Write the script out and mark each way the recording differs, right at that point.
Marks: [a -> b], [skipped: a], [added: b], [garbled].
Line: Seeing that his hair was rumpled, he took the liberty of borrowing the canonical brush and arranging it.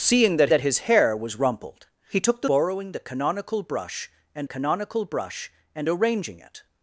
Seeing that [added: that] his hair was rumpled, he took the [liberty of borrowing the -> borrowing the canonical brush and] canonical brush and arranging it.